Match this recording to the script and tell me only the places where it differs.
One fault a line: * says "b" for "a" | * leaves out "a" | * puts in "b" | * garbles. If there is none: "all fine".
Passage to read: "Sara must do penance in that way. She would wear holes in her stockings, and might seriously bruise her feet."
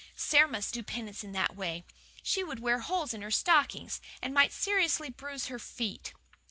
all fine